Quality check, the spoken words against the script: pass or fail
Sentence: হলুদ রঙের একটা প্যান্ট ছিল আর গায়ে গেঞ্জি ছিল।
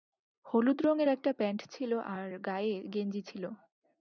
pass